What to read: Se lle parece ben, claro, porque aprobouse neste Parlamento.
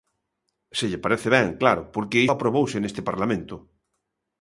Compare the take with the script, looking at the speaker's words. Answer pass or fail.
pass